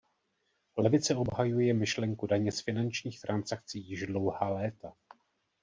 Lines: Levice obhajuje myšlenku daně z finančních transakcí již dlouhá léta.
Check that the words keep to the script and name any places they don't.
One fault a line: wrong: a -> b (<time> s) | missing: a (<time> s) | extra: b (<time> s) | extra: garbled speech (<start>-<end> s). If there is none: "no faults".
no faults